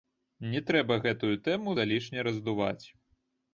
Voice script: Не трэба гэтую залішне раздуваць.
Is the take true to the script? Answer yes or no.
no